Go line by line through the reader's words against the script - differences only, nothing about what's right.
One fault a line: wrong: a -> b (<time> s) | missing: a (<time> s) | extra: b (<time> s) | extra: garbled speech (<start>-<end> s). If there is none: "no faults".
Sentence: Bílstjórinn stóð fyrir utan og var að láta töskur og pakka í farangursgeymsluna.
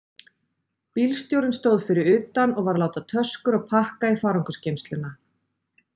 no faults